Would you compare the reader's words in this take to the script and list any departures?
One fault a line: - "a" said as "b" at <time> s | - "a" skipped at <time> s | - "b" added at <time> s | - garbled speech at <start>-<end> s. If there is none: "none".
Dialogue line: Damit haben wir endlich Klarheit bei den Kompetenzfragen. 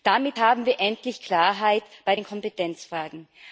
none